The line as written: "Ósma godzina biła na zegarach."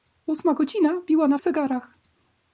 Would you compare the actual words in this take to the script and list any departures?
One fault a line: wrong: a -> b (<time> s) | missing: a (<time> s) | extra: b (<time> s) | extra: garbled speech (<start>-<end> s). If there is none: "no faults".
no faults